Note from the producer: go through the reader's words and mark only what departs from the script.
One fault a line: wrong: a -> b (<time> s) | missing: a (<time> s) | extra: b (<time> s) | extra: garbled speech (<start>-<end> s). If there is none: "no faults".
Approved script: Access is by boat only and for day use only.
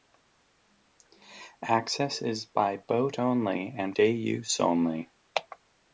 missing: for (4.0 s)